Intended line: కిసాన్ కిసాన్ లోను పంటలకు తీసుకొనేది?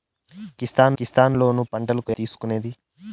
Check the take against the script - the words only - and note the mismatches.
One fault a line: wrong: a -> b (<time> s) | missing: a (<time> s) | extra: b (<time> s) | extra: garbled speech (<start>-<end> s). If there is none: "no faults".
no faults